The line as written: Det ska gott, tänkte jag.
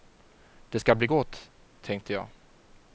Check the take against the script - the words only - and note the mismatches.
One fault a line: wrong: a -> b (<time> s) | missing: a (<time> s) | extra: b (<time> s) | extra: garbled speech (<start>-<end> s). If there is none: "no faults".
extra: bli (0.9 s)